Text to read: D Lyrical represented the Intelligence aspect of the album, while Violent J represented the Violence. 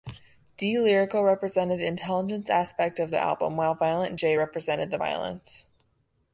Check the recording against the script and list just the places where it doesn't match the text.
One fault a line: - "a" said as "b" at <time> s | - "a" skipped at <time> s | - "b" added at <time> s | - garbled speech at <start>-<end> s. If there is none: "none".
none